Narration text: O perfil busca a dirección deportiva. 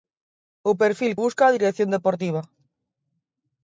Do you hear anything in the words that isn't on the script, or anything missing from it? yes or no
no